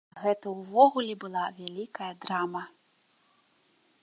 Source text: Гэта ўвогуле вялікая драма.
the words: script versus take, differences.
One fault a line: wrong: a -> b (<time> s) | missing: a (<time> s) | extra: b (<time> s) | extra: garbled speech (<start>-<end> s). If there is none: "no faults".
extra: была (1.2 s)